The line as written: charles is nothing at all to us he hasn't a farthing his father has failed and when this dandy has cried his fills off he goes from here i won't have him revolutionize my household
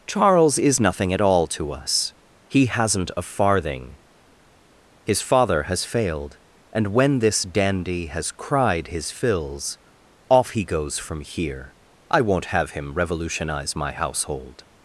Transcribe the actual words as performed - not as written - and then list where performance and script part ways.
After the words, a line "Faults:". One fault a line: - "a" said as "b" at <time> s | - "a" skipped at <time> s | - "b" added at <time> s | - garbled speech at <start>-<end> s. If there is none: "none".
charles is nothing at all to us he hasn't a farthing his father has failed and when this dandy has cried his fills off he goes from here i won't have him revolutionize my household
Faults:
none